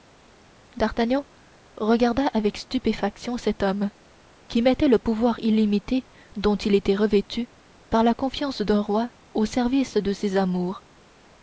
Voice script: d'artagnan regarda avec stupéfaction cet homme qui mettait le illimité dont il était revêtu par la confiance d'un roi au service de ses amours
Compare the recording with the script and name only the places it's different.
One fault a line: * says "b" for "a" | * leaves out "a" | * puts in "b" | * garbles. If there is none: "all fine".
* puts in "pouvoir"